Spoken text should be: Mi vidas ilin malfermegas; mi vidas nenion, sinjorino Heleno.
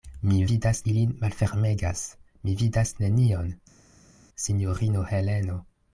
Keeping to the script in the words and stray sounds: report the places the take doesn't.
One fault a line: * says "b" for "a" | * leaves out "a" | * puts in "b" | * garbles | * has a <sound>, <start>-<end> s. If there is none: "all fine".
all fine